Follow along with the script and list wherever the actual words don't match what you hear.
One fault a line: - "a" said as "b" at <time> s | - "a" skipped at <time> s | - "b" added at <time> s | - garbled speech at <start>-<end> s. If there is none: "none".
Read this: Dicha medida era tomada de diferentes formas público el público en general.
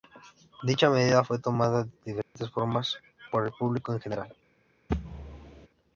- "era" said as "fue" at 1.2 s
- "público" said as "por" at 3.3 s